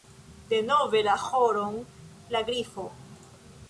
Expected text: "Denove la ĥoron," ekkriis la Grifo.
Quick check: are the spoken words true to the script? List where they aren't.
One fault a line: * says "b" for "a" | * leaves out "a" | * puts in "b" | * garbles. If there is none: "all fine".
* leaves out "ekkriis"